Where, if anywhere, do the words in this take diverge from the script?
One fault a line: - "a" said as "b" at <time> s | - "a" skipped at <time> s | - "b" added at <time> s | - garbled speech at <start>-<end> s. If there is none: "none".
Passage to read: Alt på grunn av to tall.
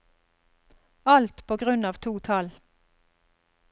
none